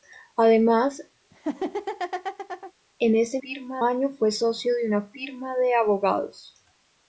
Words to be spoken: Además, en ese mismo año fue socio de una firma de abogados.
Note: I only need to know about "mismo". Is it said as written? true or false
false